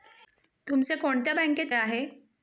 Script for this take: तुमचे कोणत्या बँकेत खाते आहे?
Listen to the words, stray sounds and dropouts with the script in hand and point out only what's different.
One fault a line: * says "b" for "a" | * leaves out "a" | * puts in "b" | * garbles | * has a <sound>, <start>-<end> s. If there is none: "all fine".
* leaves out "खाते"